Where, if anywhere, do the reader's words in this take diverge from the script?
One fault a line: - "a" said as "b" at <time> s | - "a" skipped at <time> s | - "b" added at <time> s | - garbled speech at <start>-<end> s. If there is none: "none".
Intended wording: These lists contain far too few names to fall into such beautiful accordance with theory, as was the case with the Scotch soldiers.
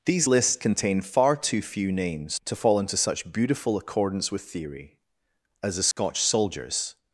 - "was the case with" skipped at 5.8 s